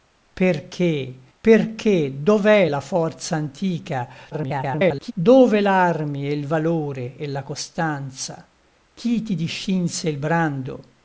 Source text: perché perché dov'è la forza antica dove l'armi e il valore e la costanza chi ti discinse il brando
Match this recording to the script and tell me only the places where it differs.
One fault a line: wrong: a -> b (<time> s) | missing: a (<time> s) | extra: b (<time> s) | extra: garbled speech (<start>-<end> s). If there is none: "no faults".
extra: garbled speech (4.3-5.1 s)